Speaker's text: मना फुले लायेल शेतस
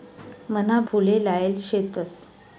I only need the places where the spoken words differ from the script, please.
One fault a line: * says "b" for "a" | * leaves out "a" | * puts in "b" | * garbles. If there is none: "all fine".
all fine